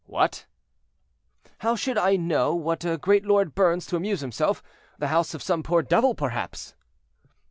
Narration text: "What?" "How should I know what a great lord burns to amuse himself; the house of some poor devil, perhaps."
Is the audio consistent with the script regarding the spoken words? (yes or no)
yes